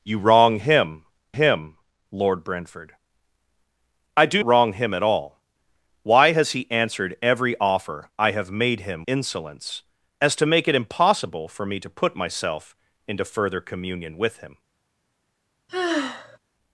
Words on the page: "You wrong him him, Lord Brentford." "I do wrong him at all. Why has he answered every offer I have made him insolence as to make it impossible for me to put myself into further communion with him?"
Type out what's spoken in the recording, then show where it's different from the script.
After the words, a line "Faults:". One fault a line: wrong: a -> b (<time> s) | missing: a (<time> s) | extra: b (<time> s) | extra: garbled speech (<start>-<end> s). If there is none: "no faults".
"You wrong him him, Lord Brentford." "I do wrong him at all. Why has he answered every offer I have made him insolence as to make it impossible for me to put myself into further communion with him?"
Faults:
no faults